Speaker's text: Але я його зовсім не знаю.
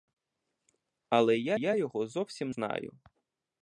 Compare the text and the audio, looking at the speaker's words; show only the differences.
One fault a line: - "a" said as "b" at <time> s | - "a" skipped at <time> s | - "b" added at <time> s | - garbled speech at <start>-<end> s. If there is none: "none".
- "я" added at 1.5 s
- "не" skipped at 2.5 s